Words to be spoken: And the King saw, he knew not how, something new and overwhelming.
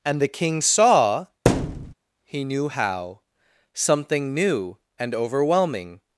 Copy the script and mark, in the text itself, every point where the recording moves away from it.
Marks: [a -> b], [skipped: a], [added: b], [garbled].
And the King saw, he knew [skipped: not] how, something new and overwhelming.